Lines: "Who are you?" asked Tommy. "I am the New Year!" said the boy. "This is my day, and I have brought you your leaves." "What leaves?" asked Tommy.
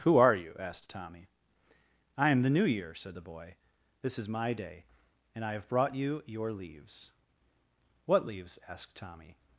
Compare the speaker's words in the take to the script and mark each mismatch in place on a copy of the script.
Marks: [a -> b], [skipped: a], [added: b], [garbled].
"Who are you?" asked Tommy. "I am the New Year!" said the boy. "This is my day, and I have brought you your leaves." "What leaves?" asked Tommy.